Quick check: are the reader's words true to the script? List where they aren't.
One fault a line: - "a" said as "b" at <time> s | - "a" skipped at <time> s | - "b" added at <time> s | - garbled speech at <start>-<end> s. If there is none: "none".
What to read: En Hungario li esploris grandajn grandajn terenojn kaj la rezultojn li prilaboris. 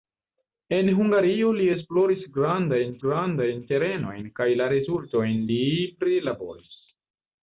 none